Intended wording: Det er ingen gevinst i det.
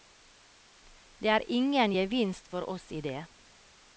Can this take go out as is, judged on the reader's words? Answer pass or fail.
fail